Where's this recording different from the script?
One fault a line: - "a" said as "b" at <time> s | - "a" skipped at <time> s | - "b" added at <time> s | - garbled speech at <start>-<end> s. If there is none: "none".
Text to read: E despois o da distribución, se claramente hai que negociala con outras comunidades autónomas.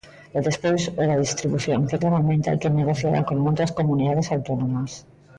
- "se" said as "que" at 1.9 s